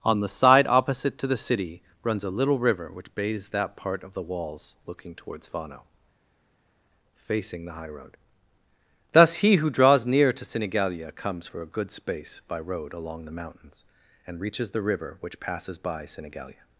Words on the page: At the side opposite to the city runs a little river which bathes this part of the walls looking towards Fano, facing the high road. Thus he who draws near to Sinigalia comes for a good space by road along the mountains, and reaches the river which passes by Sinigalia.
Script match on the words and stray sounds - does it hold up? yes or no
no